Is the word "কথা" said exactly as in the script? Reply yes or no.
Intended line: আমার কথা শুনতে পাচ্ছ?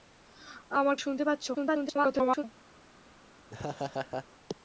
no